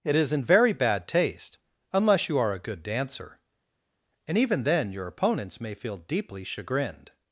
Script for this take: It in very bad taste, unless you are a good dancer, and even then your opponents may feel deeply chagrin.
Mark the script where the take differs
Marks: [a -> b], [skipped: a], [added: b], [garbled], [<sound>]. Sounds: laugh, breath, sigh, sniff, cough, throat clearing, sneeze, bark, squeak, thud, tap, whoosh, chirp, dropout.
It [added: is] in very bad taste, unless you are a good dancer, and even then your opponents may feel deeply [chagrin. -> chagrined]